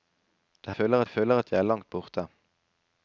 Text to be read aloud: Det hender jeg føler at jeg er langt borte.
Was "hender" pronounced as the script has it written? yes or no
no